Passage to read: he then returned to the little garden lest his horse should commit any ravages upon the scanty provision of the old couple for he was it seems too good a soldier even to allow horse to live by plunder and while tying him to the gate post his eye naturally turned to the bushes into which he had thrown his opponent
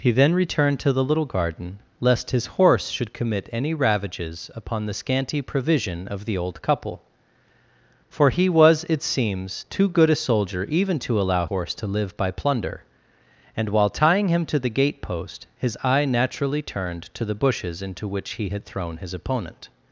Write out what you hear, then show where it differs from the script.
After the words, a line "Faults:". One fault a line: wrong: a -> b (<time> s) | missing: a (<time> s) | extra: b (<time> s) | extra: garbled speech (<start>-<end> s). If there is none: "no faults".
he then returned to the little garden lest his horse should commit any ravages upon the scanty provision of the old couple for he was it seems too good a soldier even to allow horse to live by plunder and while tying him to the gate post his eye naturally turned to the bushes into which he had thrown his opponent
Faults:
no faults